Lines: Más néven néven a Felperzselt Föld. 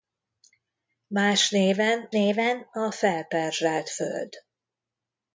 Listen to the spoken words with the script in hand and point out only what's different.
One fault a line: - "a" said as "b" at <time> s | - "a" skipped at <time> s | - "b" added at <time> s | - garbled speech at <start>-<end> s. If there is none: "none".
none